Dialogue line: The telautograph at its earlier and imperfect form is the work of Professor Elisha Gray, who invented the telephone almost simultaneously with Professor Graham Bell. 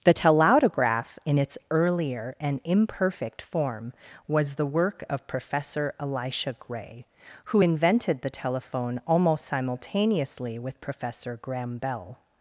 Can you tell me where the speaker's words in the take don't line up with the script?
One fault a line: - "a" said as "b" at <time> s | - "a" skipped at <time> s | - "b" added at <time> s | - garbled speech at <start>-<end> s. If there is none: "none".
- "at" said as "in" at 1.2 s
- "is" said as "was" at 4.3 s